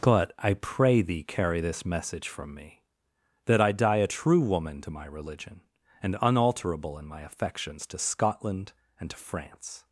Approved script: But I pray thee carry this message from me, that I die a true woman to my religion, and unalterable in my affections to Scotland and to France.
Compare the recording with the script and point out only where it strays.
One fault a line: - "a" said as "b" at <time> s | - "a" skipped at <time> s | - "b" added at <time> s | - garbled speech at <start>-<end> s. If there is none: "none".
none